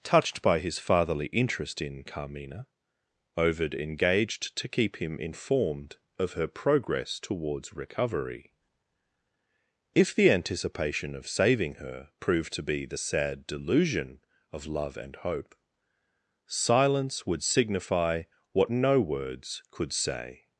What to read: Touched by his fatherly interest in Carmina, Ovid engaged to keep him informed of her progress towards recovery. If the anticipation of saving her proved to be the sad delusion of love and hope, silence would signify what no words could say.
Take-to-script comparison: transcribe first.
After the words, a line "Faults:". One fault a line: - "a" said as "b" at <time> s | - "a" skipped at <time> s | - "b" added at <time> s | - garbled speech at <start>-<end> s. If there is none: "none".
Touched by his fatherly interest in Carmina, Ovid engaged to keep him informed of her progress towards recovery. If the anticipation of saving her proved to be the sad delusion of love and hope, silence would signify what no words could say.
Faults:
none